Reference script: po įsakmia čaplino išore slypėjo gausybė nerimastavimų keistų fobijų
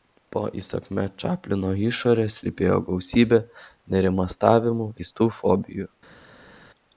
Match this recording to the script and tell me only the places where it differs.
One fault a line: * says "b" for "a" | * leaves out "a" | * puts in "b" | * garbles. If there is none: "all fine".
all fine